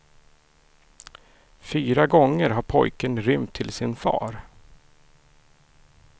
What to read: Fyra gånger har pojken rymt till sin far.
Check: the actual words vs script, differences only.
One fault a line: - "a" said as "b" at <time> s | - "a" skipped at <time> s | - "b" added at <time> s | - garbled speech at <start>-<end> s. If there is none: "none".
none